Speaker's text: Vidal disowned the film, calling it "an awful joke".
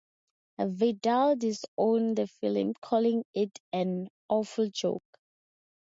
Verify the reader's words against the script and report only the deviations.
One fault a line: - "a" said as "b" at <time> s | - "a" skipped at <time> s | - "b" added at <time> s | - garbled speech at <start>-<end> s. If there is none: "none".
none